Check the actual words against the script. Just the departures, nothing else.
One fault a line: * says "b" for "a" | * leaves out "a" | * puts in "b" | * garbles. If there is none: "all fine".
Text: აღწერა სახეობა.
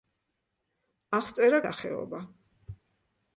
all fine